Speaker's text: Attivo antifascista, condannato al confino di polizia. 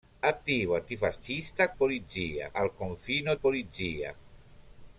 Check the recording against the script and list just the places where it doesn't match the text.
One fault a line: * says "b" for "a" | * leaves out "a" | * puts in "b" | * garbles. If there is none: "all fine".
* says "polizia" for "condannato"
* leaves out "di"